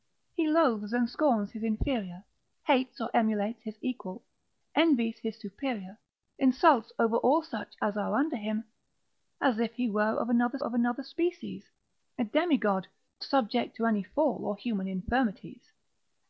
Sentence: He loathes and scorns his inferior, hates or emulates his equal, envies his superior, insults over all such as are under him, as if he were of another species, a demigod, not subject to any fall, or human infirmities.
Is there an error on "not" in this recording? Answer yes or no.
yes